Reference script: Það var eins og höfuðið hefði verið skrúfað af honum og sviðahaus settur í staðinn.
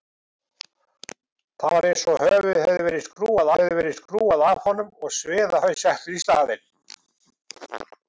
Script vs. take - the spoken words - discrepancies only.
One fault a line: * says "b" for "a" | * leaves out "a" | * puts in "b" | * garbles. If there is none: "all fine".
* puts in "hefði verið skrúfað"